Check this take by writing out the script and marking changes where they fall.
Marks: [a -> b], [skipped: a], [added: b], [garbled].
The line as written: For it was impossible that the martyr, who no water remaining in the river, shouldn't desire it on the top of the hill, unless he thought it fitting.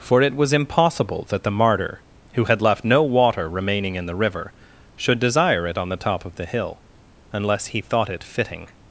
For it was impossible that the martyr, who [added: had left] no water remaining in the river, [shouldn't -> should] desire it on the top of the hill, unless he thought it fitting.